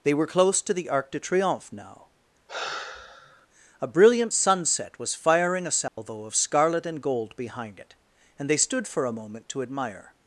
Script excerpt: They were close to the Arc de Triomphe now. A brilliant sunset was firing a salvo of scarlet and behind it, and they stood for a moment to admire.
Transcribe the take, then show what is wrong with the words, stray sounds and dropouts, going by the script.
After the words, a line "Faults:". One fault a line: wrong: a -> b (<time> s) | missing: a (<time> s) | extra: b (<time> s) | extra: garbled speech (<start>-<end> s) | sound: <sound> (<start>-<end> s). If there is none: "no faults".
They were close to the Arc de Triomphe now. A brilliant sunset was firing a salvo of scarlet and gold behind it, and they stood for a moment to admire.
Faults:
sound: sigh (2.5-3.5 s)
sound: dropout (5.9-6.0 s)
extra: gold (7.0 s)